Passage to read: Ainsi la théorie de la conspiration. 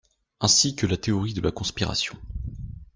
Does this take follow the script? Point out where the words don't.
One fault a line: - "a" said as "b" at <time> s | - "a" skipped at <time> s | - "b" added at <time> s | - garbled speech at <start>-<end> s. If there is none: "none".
- "que" added at 0.8 s